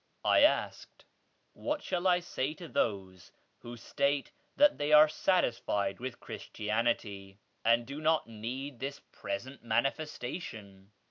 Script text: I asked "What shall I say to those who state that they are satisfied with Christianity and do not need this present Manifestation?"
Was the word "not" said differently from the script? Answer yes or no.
no